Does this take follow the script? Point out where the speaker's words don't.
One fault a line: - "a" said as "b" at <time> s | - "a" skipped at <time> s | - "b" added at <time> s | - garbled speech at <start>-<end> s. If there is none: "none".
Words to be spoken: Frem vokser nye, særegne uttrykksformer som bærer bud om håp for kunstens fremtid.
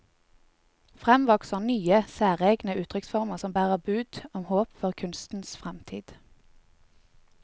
none